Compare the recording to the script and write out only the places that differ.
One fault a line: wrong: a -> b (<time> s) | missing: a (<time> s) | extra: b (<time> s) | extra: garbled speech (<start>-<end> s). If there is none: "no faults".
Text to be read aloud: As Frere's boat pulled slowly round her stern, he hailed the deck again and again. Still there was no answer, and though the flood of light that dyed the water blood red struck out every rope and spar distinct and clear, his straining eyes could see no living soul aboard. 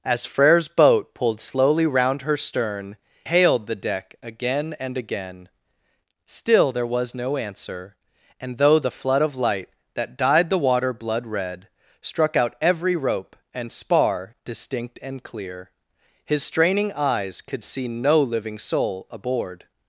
missing: he (3.0 s)